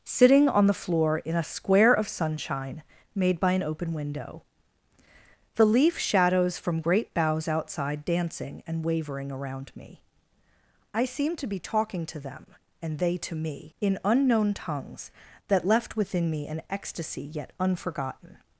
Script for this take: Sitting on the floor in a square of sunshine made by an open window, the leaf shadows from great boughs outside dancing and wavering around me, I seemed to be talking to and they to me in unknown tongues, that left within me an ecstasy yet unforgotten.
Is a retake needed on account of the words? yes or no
yes